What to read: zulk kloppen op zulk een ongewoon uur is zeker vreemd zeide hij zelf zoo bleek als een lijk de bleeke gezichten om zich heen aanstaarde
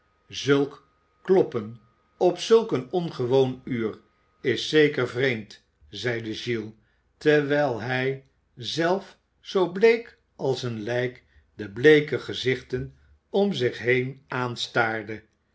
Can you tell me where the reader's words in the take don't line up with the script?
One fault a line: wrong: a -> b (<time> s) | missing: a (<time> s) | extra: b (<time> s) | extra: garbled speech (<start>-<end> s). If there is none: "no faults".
extra: giles terwijl (6.3 s)